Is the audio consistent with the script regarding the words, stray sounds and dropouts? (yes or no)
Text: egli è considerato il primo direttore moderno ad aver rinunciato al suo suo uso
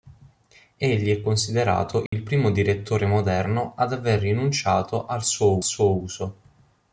no